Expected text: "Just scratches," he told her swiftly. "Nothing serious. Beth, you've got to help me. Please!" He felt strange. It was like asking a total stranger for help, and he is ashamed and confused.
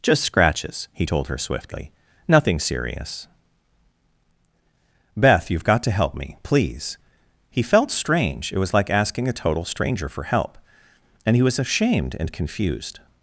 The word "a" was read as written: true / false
true